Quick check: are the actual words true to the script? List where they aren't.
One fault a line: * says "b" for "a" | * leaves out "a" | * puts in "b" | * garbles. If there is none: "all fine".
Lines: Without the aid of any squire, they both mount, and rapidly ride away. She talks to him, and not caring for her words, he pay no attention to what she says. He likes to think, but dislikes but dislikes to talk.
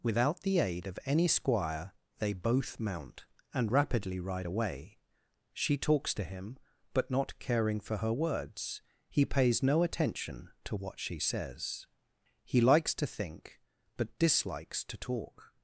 * says "but" for "and"
* says "pays" for "pay"
* leaves out "but dislikes"